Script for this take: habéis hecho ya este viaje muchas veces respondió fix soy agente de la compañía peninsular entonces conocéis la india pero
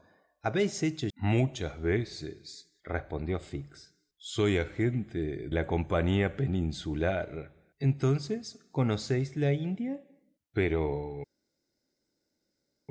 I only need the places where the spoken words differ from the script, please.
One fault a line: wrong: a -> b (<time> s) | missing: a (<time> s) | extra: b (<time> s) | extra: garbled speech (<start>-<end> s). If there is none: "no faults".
missing: ya este viaje (1.1 s)
missing: de (5.5 s)